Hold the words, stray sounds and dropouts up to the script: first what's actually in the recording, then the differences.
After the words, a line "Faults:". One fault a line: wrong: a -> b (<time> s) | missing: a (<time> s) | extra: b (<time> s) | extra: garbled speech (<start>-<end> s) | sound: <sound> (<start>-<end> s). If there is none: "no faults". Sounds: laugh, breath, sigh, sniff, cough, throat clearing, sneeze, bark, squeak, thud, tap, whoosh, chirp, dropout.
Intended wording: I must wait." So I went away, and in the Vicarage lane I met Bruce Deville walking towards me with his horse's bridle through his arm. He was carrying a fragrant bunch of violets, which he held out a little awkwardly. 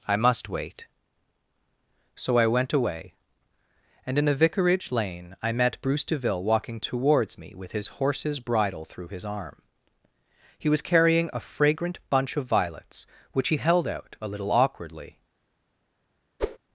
I must wait." So I went away, and in a Vicarage lane I met Bruce Deville walking towards me with his horse's bridle through his arm. He was carrying a fragrant bunch of violets, which he held out a little awkwardly.
Faults:
wrong: the -> a (4.3 s)
sound: whoosh (16.4-16.6 s)